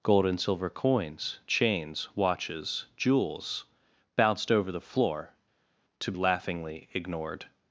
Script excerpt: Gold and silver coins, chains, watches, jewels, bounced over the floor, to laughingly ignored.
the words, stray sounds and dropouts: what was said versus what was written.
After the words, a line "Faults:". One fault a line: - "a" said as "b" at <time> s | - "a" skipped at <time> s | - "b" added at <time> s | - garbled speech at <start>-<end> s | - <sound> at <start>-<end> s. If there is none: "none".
Gold and silver coins, chains, watches, jewels, bounced over the floor, to laughingly ignored.
Faults:
none